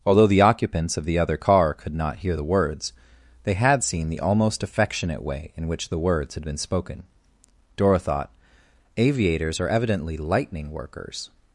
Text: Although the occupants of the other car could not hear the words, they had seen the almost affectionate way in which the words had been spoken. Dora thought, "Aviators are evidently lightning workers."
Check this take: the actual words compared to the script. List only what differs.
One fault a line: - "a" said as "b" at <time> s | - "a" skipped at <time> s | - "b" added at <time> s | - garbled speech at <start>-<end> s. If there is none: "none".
none